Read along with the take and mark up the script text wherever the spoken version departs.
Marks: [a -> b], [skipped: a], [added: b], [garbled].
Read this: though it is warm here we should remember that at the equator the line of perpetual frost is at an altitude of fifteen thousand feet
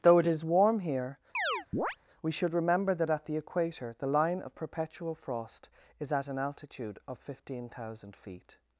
though it is warm here we should remember that at the equator the line of perpetual frost is at an altitude of fifteen thousand feet